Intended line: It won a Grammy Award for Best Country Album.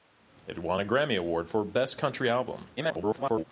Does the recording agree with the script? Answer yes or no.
no